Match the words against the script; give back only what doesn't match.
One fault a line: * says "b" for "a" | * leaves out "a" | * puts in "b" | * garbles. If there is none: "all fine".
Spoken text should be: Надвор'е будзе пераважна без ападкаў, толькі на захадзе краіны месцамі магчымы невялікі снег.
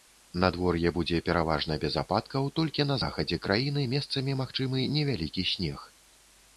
all fine